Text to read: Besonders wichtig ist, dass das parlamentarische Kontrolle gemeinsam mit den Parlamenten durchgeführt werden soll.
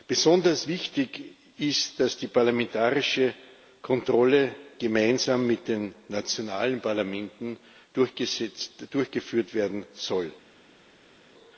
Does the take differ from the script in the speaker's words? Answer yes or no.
yes